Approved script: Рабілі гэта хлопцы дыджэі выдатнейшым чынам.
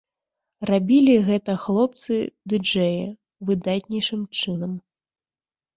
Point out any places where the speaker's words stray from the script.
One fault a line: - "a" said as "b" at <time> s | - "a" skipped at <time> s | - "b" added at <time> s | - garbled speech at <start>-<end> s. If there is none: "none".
none